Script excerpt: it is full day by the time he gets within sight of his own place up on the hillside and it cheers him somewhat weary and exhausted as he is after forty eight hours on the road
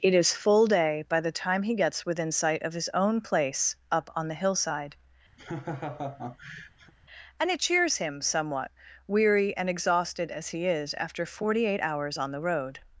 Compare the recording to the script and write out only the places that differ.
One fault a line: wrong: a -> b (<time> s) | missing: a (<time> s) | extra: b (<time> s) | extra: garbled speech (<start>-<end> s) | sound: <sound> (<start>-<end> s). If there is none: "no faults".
sound: laugh (5.4-6.9 s)